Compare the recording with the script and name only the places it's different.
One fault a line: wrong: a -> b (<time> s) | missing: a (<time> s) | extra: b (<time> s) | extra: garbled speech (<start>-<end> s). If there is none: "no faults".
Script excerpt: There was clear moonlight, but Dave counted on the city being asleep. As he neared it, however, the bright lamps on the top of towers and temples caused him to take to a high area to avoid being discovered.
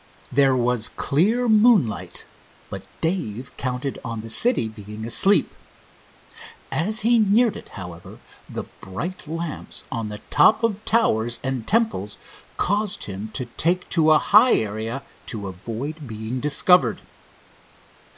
no faults